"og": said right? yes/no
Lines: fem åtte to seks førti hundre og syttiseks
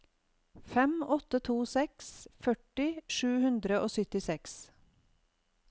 yes